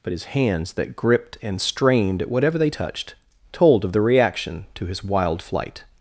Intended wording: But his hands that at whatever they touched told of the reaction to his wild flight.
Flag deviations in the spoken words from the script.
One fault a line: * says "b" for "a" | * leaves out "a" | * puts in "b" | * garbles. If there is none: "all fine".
* puts in "gripped and strained"